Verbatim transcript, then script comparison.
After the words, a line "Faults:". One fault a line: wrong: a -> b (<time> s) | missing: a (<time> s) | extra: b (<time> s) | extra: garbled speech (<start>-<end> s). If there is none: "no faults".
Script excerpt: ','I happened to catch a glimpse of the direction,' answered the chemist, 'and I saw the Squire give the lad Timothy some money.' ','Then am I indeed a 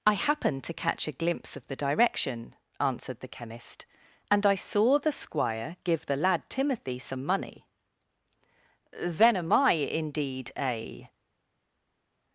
','I happened to catch a glimpse of the direction,' answered the chemist, 'and I saw the Squire give the lad Timothy some money.' ','Then am I indeed a
Faults:
no faults